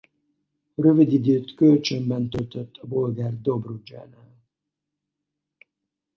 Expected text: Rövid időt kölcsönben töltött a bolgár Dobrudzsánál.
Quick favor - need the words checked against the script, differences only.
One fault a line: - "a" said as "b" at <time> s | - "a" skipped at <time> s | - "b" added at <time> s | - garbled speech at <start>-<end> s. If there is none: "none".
none